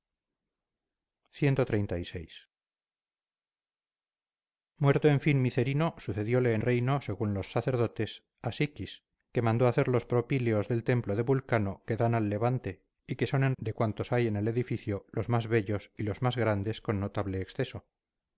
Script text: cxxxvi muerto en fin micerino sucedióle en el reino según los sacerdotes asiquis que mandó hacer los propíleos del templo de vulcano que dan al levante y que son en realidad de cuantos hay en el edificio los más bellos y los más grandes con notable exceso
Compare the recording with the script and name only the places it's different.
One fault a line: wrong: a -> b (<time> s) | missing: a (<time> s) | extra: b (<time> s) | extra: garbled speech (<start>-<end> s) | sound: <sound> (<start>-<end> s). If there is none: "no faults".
missing: el (6.6 s)
missing: realidad (13.6 s)